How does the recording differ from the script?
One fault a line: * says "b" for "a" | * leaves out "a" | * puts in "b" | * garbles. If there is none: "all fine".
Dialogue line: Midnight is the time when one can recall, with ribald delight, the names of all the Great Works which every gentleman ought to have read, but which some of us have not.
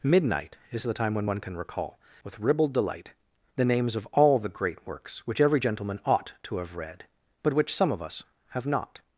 all fine